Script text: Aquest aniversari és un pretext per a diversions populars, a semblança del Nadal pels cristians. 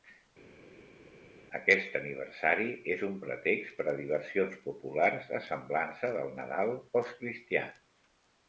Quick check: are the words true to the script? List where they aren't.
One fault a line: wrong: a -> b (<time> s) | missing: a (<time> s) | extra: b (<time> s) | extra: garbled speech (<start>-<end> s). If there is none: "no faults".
no faults